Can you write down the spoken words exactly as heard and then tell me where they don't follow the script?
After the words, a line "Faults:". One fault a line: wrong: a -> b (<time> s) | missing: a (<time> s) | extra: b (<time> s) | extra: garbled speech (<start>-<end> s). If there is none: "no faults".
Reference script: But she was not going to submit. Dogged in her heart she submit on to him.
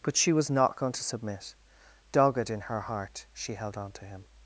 But she was not going to submit. Dogged in her heart she held on to him.
Faults:
wrong: submit -> held (3.5 s)